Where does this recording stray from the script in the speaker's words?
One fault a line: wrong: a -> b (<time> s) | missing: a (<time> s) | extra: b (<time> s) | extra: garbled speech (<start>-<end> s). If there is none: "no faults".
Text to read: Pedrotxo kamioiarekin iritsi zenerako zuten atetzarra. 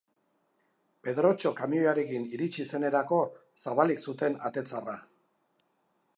extra: zabalik (3.6 s)